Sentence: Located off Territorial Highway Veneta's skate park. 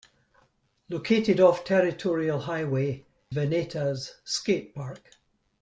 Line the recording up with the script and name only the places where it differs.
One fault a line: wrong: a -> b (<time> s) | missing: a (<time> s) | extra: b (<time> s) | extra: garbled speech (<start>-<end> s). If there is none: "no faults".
no faults